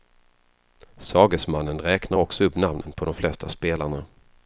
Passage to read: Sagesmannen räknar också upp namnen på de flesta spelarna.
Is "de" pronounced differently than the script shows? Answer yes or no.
no